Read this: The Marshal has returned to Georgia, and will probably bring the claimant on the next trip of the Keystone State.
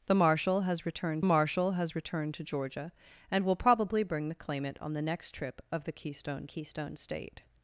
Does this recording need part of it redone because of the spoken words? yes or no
yes